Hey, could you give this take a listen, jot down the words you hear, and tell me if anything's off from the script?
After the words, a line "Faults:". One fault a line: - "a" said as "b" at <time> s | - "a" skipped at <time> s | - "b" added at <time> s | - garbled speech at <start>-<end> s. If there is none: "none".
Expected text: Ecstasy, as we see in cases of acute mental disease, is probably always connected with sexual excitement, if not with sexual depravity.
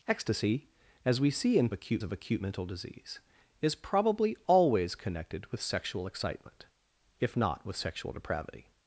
Ecstasy, as we see in acute of acute mental disease, is probably always connected with sexual excitement, if not with sexual depravity.
Faults:
- "cases" said as "acute" at 1.7 s